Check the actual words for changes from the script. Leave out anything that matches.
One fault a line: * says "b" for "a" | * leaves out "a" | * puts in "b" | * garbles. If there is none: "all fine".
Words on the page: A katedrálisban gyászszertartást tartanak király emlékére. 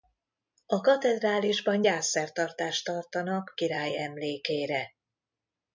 all fine